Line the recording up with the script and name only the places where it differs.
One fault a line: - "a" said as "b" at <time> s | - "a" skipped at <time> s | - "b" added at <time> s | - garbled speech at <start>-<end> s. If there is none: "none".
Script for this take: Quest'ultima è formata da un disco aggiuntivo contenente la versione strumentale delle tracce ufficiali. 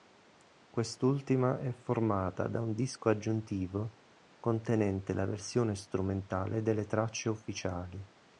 none